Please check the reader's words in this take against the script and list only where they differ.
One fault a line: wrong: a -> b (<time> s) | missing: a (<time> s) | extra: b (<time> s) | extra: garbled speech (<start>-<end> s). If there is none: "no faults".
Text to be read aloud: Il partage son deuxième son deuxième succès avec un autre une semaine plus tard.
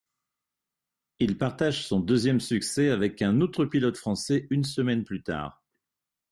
missing: son deuxième (2.4 s)
extra: pilote français (3.6 s)